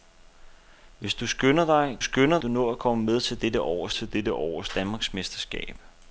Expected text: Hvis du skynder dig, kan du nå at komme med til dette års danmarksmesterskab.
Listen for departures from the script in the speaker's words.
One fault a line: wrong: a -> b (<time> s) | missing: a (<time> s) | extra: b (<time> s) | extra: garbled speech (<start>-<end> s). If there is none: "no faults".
wrong: kan -> skynder (2.0 s)
extra: til dette års (3.9 s)